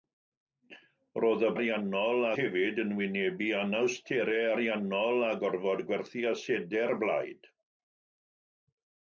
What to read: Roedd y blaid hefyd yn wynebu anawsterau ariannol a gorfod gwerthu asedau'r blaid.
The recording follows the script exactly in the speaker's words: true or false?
false